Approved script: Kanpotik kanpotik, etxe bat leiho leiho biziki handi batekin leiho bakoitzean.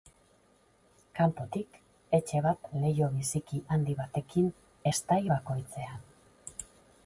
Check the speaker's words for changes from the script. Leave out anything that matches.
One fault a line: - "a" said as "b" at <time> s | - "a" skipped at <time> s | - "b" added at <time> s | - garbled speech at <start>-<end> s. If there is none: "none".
- "kanpotik" skipped at 1.8 s
- "leiho" skipped at 3.1 s
- "leiho" said as "estai" at 4.9 s